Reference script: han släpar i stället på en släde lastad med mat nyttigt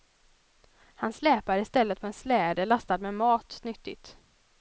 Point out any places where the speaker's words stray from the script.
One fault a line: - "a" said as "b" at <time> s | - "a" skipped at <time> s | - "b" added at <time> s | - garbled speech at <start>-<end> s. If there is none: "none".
none